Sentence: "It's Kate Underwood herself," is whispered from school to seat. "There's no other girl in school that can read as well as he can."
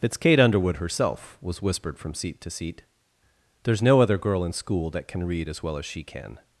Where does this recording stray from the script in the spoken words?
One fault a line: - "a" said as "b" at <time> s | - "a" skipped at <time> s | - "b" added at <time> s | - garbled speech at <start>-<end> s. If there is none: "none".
- "is" said as "was" at 1.4 s
- "school" said as "seat" at 2.1 s
- "he" said as "she" at 5.8 s